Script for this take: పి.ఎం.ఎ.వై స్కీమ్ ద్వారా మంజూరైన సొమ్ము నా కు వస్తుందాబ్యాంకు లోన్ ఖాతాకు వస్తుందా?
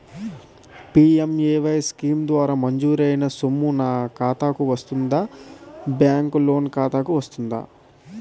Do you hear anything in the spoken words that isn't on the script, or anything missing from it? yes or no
yes